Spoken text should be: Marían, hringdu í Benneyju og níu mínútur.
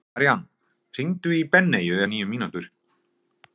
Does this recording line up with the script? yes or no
yes